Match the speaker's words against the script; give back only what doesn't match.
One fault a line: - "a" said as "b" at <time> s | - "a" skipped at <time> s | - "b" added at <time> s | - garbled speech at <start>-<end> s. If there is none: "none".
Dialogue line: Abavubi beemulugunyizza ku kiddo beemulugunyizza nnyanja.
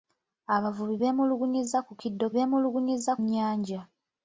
none